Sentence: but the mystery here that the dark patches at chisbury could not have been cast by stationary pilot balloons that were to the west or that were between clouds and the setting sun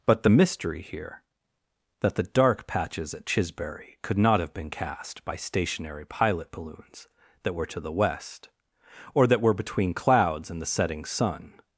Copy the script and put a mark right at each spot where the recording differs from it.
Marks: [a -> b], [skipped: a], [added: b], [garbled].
but the mystery here that the dark patches at chisbury could not have been cast by stationary pilot balloons that were to the west or that were between clouds and the setting sun